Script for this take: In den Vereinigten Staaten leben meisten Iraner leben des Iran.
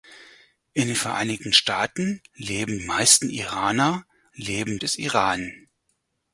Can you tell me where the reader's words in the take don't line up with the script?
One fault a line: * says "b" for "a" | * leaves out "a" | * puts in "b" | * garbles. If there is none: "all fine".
all fine